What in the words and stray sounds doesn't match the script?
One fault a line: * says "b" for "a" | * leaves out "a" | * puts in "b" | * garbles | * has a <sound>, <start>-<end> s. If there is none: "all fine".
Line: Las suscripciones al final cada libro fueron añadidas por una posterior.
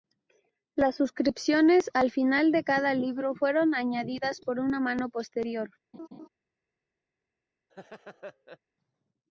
* puts in "de"
* puts in "mano"
* has a laugh, 5.9-6.3 s
* has a laugh, 7.7-8.6 s